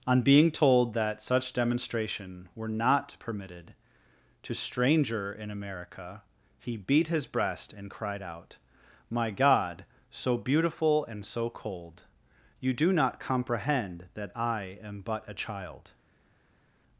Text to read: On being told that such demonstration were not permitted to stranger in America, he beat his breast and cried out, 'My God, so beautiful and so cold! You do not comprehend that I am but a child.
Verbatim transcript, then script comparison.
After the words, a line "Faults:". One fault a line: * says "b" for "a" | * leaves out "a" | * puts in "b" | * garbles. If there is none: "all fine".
On being told that such demonstration were not permitted to stranger in America, he beat his breast and cried out, 'My God, so beautiful and so cold! You do not comprehend that I am but a child.
Faults:
all fine